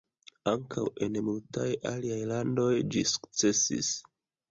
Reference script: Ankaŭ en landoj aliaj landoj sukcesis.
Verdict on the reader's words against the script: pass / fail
fail